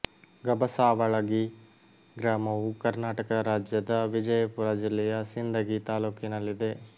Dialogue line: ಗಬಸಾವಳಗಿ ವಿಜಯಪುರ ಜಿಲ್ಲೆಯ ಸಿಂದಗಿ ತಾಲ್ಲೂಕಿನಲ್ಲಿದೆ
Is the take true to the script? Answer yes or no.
no